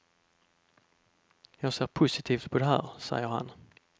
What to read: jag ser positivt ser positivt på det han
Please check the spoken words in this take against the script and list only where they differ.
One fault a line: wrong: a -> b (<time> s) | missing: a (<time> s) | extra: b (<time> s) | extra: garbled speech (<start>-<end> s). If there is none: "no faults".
wrong: ser positivt på det -> på det här säger (2.5 s)